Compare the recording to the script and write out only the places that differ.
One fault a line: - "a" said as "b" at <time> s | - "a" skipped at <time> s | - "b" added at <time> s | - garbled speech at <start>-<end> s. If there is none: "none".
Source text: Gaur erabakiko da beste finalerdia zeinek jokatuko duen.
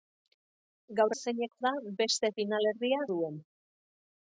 - "erabakiko" said as "zeinek" at 1.2 s
- "zeinek jokatuko" skipped at 3.0 s